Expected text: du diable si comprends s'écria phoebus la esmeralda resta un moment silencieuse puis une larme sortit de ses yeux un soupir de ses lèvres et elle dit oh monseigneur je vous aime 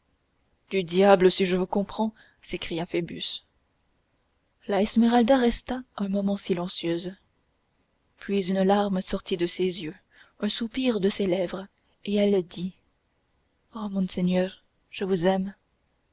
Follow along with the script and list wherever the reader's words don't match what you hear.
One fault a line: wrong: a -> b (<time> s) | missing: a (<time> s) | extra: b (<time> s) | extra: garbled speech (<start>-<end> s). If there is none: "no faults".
extra: je vous (1.4 s)